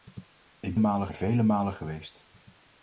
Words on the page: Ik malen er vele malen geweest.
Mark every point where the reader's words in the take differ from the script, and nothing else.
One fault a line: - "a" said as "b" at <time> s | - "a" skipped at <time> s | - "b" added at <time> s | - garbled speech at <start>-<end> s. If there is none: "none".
none